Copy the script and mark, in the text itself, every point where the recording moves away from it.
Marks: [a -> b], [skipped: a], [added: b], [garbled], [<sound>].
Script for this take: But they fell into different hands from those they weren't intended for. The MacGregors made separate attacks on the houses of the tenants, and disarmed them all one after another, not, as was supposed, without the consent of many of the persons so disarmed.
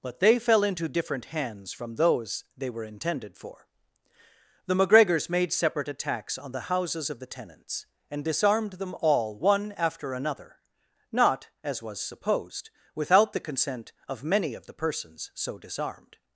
But they fell into different hands from those they [weren't -> were] intended for. The MacGregors made separate attacks on the houses of the tenants, and disarmed them all one after another, not, as was supposed, without the consent of many of the persons so disarmed.